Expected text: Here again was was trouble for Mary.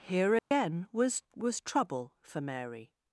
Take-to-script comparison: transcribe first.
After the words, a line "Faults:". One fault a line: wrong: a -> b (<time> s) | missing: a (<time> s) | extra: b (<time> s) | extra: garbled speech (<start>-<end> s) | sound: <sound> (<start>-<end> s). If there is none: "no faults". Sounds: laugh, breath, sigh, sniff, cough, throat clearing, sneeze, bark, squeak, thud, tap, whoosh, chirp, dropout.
Here again was was trouble for Mary.
Faults:
sound: dropout (0.4-0.5 s)